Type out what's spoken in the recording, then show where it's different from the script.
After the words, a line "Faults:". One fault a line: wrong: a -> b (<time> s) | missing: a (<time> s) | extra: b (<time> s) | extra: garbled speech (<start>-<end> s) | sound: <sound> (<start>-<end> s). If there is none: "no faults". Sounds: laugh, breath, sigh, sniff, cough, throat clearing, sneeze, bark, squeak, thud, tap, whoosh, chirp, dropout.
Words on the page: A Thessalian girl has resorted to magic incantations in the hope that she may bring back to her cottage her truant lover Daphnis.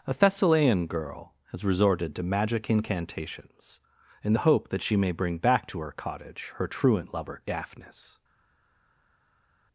A Thessalian girl has resorted to magic incantations in the hope that she may bring back to her cottage her truant lover Daphnis.
Faults:
no faults